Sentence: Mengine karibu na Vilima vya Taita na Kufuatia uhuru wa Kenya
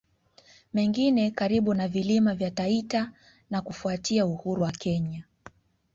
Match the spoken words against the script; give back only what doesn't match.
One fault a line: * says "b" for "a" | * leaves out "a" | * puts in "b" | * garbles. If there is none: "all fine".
all fine